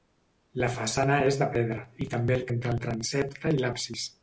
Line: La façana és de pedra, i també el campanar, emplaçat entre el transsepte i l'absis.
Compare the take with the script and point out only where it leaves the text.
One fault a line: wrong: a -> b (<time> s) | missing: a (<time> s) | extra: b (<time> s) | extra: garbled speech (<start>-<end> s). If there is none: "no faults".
missing: campanar emplaçat (2.5 s)